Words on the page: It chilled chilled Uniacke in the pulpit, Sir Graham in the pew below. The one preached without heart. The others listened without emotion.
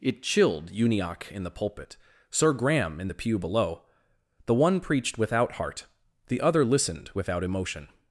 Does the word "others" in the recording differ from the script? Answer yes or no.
yes